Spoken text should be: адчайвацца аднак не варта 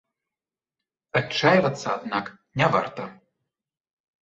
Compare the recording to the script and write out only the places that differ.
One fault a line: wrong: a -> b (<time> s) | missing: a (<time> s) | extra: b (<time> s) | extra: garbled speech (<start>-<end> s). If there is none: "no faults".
no faults